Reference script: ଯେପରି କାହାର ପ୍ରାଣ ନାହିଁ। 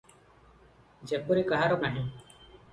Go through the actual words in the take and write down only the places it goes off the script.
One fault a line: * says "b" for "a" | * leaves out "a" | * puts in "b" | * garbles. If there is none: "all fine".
* leaves out "ପ୍ରାଣ"